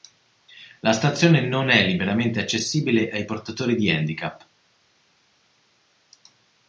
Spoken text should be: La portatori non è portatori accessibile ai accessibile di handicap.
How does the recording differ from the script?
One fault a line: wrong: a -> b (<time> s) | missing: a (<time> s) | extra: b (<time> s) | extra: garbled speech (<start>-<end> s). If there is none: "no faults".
wrong: portatori -> stazione (0.9 s)
wrong: portatori -> liberamente (1.9 s)
wrong: accessibile -> portatori (3.3 s)